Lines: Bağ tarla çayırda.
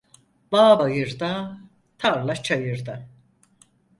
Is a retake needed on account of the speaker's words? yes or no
yes